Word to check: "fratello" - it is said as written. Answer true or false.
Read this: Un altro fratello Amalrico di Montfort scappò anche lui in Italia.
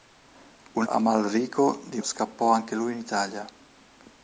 false